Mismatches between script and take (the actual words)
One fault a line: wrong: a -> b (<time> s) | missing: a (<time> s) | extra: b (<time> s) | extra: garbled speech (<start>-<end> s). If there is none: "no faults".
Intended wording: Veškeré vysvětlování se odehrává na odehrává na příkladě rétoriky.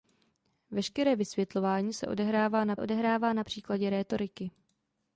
no faults